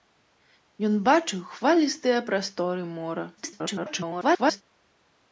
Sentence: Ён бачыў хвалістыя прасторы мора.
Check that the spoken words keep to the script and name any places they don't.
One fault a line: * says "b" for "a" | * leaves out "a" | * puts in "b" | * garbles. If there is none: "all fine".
* garbles